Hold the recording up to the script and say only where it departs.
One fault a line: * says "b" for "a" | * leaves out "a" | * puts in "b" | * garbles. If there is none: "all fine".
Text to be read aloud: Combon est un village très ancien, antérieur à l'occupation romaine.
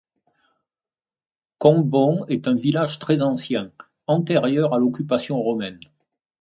all fine